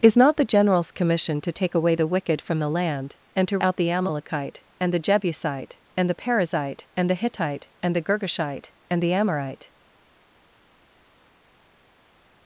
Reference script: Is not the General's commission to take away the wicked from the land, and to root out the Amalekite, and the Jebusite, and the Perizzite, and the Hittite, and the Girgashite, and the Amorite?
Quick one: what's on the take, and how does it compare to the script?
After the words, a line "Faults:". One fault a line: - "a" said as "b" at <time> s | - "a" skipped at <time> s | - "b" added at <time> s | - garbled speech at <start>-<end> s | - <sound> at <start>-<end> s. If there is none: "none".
Is not the General's commission to take away the wicked from the land, and to out the Amalekite, and the Jebusite, and the Perizzite, and the Hittite, and the Girgashite, and the Amorite?
Faults:
- "root" skipped at 3.6 s